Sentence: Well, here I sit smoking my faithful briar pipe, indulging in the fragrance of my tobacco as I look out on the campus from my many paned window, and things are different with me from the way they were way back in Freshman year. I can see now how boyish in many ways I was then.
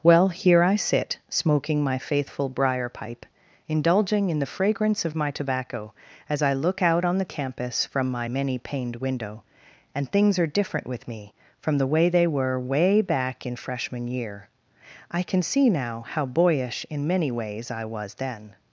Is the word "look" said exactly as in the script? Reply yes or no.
yes